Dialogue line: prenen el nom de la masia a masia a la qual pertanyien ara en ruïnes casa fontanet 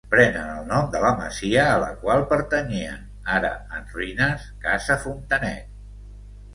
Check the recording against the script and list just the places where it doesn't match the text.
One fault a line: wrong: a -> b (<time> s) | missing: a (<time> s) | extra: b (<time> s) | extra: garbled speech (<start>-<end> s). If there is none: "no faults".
missing: masia a (1.8 s)